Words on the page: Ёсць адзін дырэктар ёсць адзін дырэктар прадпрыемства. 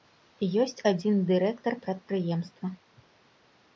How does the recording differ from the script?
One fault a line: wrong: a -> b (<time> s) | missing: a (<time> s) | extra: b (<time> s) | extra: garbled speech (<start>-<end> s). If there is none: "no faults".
missing: ёсць адзін дырэктар (1.7 s)